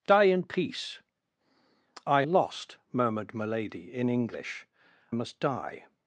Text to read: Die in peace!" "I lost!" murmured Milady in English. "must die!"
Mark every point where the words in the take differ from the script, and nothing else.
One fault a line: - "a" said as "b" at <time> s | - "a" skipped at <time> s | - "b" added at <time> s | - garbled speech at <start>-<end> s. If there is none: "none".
none